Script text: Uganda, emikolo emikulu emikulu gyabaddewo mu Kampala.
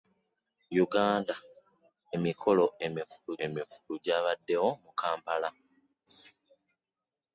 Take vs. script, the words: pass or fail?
pass